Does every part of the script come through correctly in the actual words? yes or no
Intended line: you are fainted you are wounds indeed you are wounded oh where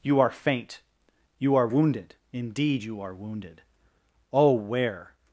no